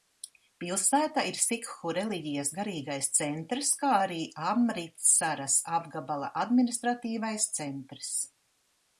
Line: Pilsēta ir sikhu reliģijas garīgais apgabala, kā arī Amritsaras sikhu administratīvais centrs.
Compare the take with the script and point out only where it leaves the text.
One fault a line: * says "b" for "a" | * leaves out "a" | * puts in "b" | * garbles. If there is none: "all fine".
* says "centrs" for "apgabala"
* says "apgabala" for "sikhu"